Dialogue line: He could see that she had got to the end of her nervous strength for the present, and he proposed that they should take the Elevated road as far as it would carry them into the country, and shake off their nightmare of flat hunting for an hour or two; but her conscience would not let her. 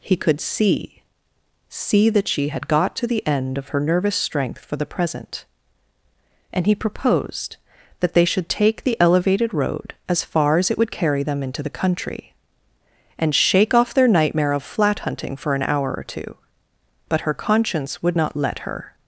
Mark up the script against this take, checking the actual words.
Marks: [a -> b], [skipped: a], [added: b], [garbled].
He could see [added: see] that she had got to the end of her nervous strength for the present, and he proposed that they should take the Elevated road as far as it would carry them into the country, and shake off their nightmare of flat hunting for an hour or two; but her conscience would not let her.